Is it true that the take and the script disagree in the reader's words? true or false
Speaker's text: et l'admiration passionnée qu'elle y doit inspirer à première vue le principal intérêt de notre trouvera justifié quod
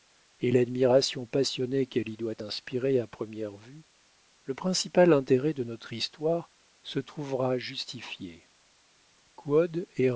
true